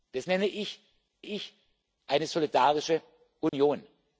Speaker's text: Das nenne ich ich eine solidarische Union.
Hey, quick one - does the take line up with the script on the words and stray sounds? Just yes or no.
no